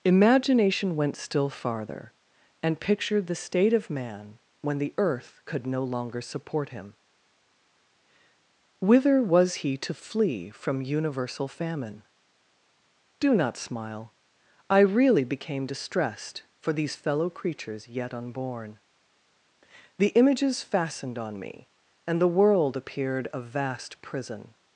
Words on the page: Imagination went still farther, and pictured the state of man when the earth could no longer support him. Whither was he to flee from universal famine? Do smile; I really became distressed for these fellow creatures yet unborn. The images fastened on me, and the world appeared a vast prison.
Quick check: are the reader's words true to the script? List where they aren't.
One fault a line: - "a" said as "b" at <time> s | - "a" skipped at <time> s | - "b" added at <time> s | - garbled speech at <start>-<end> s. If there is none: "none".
- "not" added at 13.3 s